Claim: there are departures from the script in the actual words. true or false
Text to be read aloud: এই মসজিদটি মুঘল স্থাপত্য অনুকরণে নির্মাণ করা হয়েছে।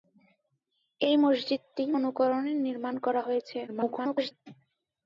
true